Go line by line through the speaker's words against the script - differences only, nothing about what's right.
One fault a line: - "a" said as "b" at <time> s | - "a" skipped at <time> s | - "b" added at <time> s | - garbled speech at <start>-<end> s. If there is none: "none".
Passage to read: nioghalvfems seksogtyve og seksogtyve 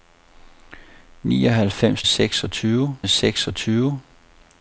none